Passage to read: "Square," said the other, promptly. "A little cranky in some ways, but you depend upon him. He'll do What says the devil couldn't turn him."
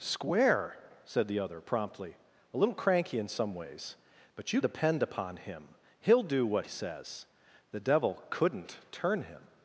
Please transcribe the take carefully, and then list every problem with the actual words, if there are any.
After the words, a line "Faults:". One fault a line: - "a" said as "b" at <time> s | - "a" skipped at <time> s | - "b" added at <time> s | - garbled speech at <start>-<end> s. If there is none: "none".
"Square," said the other, promptly. "A little cranky in some ways, but you depend upon him. He'll do What says the devil couldn't turn him."
Faults:
none